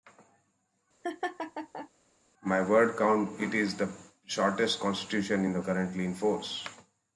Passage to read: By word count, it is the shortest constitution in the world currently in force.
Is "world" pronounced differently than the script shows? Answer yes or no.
yes